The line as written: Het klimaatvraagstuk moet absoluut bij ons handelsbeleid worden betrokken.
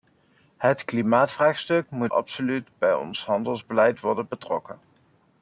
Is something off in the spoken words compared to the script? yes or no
no